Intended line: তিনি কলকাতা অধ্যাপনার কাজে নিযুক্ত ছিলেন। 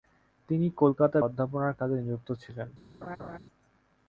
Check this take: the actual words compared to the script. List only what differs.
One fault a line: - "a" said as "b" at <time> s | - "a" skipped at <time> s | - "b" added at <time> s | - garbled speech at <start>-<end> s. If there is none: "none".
none